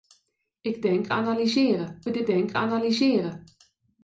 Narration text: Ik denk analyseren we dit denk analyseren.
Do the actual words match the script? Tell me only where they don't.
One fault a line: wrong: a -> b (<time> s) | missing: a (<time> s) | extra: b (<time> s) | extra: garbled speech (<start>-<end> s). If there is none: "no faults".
no faults